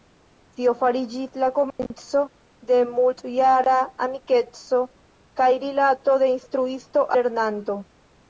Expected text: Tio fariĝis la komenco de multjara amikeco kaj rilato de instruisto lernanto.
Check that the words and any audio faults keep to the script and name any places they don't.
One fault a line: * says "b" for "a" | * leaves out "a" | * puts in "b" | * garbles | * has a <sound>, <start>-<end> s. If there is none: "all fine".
* has a dropout, 1.7-1.8 s